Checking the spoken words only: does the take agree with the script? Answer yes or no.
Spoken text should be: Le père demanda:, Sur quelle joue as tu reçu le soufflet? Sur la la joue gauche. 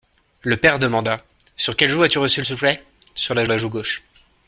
yes